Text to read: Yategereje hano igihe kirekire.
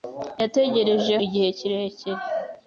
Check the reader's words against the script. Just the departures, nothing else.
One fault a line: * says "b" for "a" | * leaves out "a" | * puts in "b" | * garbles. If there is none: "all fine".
* leaves out "hano"